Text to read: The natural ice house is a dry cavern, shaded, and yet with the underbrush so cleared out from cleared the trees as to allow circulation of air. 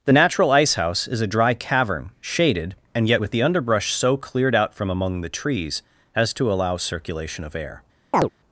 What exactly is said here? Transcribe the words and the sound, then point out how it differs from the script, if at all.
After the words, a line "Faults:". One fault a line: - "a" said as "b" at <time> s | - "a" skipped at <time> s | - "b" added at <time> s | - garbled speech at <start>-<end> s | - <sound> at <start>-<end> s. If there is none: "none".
The natural ice house is a dry cavern, shaded, and yet with the underbrush so cleared out from among the trees as to allow circulation of air.
Faults:
- "cleared" said as "among" at 4.9 s
- chirp at 8.1-8.3 s